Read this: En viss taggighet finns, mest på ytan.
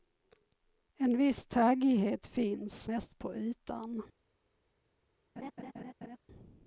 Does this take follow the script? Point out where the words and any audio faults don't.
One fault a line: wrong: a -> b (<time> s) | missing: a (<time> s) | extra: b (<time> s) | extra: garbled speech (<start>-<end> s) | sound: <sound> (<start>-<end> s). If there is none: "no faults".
sound: laugh (5.4-6.2 s)